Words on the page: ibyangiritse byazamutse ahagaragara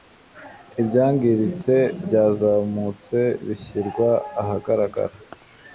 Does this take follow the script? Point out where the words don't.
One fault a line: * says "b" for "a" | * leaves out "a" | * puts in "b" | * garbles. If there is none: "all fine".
* puts in "bishyirwa"